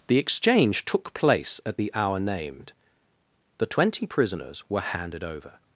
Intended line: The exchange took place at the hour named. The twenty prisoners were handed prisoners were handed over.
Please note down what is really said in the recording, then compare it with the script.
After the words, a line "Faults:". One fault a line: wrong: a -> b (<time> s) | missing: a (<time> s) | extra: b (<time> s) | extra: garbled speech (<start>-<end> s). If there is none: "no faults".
The exchange took place at the hour named. The twenty prisoners were handed over.
Faults:
missing: prisoners were handed (5.2 s)